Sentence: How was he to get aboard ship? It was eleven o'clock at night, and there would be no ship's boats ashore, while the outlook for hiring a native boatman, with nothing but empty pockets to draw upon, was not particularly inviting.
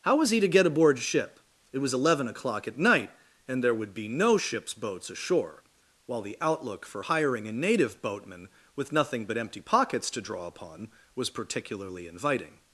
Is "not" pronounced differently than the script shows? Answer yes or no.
yes